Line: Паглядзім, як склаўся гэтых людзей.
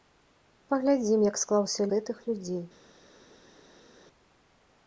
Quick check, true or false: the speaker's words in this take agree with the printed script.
true